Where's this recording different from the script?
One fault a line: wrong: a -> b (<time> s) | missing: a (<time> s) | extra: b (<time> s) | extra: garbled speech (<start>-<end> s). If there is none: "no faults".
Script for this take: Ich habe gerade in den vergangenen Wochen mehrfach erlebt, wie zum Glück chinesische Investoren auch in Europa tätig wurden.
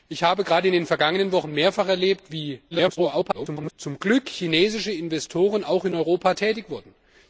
extra: garbled speech (2.7-3.7 s)